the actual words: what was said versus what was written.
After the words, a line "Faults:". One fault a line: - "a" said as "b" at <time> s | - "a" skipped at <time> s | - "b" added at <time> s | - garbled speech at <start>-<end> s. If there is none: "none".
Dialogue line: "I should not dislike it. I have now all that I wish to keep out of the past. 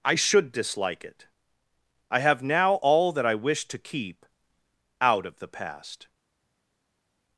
"I should dislike it. I have now all that I wish to keep out of the past.
Faults:
- "not" skipped at 0.5 s